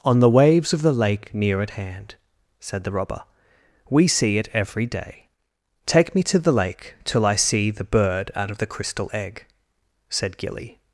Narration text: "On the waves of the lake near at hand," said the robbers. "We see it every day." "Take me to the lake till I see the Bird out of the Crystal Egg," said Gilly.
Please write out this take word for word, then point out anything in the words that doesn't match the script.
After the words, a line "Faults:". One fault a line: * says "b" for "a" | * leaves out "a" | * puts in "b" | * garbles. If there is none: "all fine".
"On the waves of the lake near at hand," said the robber. "We see it every day." "Take me to the lake till I see the Bird out of the Crystal Egg," said Gilly.
Faults:
* says "robber" for "robbers"